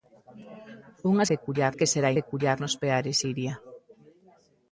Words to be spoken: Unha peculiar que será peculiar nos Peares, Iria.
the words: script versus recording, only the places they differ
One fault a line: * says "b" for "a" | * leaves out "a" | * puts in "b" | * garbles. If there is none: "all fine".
all fine